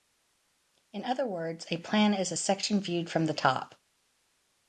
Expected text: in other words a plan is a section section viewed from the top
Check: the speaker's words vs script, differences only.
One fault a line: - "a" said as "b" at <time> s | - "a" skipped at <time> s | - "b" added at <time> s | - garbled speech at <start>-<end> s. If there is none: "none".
- "section" skipped at 2.8 s